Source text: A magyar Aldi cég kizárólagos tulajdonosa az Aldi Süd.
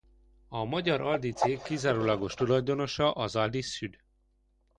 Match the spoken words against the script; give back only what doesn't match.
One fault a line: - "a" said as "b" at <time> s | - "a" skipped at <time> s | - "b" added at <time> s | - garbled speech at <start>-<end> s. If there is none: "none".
none